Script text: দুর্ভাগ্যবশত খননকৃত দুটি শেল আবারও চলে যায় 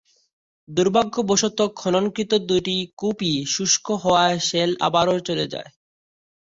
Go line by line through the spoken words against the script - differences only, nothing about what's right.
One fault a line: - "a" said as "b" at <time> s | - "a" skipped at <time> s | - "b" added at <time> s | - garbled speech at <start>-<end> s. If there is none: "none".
- "কূপই শুষ্ক হওয়ায়" added at 3.0 s